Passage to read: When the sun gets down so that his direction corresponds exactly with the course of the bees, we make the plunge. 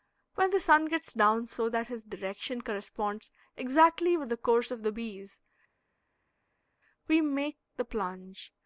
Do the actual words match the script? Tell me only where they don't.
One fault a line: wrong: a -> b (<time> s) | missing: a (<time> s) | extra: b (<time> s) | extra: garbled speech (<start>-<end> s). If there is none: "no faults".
no faults